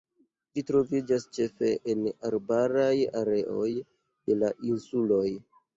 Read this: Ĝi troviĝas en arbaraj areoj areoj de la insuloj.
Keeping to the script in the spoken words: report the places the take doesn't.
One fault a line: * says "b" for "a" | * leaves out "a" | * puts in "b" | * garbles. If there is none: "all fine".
* puts in "ĉefe"
* leaves out "areoj"